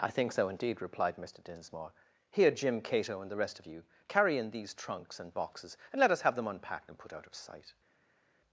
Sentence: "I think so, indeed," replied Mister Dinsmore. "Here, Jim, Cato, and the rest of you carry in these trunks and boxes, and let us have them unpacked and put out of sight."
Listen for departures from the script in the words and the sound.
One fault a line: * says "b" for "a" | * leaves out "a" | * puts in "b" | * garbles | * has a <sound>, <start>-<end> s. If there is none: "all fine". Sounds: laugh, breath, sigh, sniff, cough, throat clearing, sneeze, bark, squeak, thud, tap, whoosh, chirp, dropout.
all fine